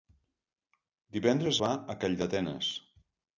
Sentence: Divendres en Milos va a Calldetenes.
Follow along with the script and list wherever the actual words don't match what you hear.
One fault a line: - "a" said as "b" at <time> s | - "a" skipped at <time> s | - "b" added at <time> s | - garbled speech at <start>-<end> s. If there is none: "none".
- "en Milos" skipped at 1.6 s